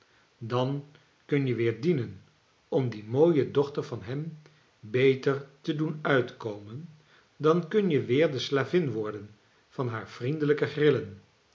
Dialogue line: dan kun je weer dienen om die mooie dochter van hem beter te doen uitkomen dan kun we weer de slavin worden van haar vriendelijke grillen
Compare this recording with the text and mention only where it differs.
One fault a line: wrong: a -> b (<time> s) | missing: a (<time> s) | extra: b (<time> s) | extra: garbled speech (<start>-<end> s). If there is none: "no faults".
wrong: we -> je (7.9 s)